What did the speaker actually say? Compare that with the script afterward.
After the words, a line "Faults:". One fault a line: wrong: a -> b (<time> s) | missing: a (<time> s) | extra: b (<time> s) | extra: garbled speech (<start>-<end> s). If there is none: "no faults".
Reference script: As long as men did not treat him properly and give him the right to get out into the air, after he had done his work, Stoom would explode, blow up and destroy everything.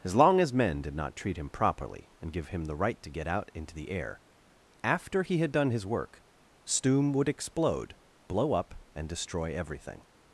As long as men did not treat him properly and give him the right to get out into the air, after he had done his work, Stoom would explode, blow up and destroy everything.
Faults:
no faults